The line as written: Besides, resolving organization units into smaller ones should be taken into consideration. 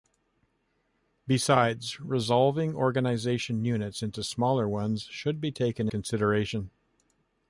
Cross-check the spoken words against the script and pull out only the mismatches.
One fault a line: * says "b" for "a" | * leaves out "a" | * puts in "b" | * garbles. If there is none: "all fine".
* leaves out "into"